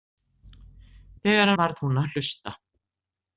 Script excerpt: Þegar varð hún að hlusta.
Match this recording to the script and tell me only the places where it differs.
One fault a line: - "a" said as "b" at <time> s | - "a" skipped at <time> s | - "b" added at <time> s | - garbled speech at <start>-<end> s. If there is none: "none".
none